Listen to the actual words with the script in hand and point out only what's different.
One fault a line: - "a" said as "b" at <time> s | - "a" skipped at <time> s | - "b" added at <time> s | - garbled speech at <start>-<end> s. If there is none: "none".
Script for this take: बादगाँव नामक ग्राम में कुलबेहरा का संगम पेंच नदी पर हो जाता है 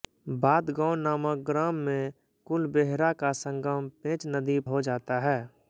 - "पर" skipped at 4.6 s